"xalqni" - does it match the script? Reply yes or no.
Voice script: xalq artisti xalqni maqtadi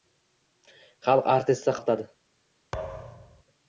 no